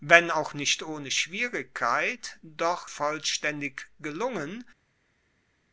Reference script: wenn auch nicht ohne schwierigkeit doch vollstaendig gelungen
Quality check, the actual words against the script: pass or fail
pass